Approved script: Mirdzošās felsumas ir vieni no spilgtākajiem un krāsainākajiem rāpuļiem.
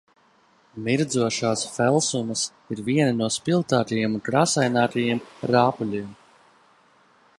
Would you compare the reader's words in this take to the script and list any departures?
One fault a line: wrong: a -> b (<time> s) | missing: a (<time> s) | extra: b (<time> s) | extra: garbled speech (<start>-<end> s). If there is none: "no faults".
no faults